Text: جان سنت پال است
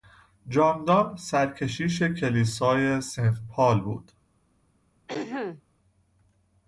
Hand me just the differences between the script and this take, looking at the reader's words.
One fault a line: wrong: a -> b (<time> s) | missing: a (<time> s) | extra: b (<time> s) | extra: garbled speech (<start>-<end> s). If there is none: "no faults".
extra: دان سرکشیش کلیسای (0.8 s)
wrong: است -> بود (3.8 s)